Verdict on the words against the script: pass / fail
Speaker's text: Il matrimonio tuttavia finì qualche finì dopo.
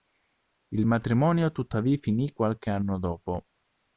fail